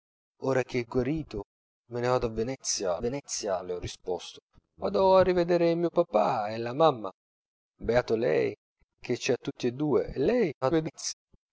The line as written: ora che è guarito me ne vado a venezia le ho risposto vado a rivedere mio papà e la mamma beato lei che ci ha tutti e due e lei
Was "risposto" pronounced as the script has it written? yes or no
yes